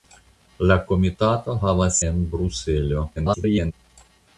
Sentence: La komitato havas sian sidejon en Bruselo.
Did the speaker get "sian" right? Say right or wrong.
wrong